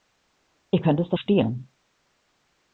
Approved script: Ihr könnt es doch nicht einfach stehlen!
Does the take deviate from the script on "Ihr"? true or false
false